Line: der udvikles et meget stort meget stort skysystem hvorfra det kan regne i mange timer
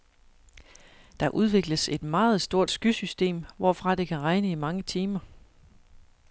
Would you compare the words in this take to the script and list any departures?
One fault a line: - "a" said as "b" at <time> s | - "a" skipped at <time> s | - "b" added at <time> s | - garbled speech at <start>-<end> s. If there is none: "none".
- "meget stort" skipped at 2.7 s